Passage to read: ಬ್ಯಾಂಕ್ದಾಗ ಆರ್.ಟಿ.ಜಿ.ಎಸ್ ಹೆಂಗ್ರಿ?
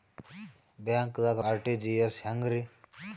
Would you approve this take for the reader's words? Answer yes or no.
yes